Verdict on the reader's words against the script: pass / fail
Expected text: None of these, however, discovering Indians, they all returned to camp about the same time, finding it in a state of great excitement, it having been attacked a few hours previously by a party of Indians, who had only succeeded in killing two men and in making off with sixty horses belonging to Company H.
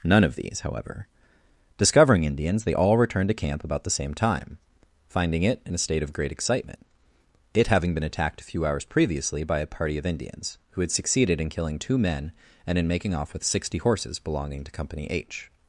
fail